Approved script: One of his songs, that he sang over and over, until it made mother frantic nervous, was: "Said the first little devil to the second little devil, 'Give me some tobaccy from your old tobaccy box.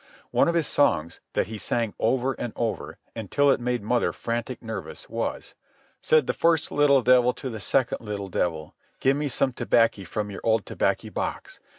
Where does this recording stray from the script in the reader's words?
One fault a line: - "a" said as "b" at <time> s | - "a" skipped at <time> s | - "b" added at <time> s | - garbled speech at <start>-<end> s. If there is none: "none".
none